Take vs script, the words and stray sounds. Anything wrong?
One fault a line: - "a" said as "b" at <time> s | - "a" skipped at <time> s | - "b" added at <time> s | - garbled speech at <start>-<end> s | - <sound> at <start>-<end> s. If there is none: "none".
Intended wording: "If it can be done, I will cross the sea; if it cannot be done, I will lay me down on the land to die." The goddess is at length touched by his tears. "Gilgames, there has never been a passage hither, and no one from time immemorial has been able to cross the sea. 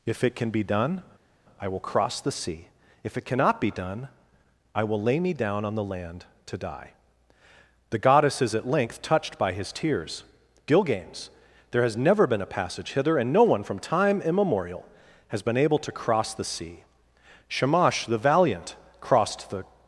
- "Shamash the valiant crossed the" added at 17.5 s